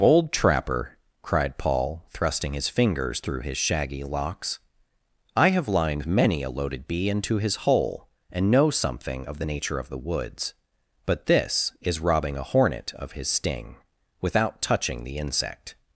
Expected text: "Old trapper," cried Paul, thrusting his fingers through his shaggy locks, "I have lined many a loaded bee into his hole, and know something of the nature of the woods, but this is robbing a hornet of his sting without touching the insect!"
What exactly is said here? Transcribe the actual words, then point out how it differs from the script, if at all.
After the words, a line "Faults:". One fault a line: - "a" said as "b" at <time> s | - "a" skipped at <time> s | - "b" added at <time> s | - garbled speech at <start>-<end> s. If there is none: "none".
"Bold trapper," cried Paul, thrusting his fingers through his shaggy locks, "I have lined many a loaded bee into his hole, and know something of the nature of the woods, but this is robbing a hornet of his sting without touching the insect!"
Faults:
- "Old" said as "Bold" at 0.0 s